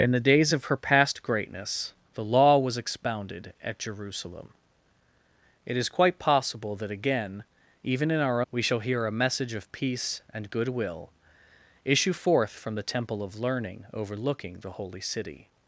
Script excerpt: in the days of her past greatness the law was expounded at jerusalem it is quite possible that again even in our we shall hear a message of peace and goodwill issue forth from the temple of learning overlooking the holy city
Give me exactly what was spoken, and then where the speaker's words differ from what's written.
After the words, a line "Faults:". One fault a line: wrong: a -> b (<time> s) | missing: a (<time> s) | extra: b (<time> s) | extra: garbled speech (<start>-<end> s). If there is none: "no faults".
in the days of her past greatness the law was expounded at jerusalem it is quite possible that again even in our we shall hear a message of peace and goodwill issue forth from the temple of learning overlooking the holy city
Faults:
no faults